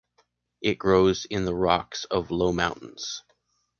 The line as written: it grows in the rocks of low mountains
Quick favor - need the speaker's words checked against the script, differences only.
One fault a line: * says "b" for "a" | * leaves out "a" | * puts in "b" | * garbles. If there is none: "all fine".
all fine